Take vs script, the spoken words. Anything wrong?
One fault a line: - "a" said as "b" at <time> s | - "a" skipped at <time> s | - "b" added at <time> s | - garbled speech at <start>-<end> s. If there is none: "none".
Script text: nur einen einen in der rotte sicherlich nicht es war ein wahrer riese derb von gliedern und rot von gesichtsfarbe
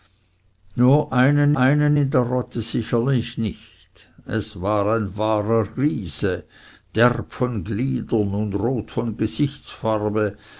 none